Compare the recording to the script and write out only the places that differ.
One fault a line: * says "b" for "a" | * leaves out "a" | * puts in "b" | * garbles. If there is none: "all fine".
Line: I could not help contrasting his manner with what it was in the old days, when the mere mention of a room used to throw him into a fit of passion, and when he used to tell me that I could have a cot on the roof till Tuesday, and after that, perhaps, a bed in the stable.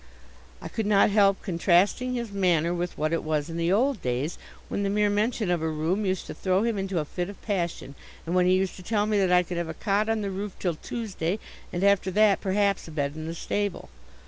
all fine